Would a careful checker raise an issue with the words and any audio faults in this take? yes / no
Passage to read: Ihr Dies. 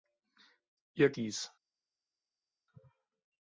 no